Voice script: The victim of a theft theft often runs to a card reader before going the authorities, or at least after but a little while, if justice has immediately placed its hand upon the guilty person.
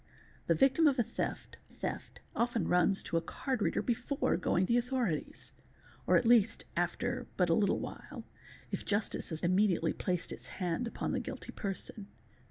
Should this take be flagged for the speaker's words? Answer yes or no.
no